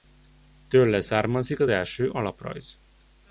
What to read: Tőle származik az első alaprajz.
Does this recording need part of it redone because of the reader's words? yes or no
no